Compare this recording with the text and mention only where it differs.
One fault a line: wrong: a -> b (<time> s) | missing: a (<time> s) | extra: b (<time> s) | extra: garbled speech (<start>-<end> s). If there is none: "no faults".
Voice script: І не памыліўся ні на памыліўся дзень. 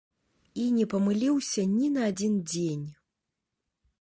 wrong: памыліўся -> адзін (2.1 s)